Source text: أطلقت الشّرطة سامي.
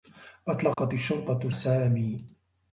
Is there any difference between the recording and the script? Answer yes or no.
no